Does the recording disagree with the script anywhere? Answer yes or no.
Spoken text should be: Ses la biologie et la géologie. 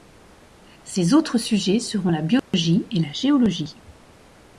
yes